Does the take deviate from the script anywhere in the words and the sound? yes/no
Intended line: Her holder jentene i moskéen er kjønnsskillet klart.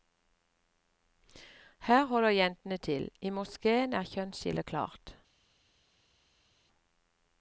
yes